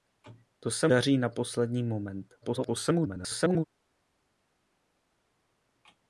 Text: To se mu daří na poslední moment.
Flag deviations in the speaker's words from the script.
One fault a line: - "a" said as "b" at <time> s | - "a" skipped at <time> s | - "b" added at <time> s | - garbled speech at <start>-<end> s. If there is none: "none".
- "mu" skipped at 0.9 s
- garbled speech at 2.4-3.6 s